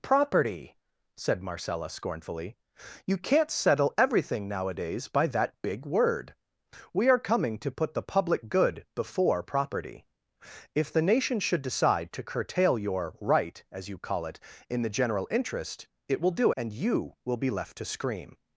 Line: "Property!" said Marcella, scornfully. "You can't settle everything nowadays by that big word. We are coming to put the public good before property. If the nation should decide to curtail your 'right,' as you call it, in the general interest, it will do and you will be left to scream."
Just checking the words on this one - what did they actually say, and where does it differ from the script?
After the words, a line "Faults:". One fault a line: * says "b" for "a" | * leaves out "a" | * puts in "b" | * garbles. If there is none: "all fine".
"Property!" said Marcella, scornfully. "You can't settle everything nowadays by that big word. We are coming to put the public good before property. If the nation should decide to curtail your 'right,' as you call it, in the general interest, it will do and you will be left to scream."
Faults:
all fine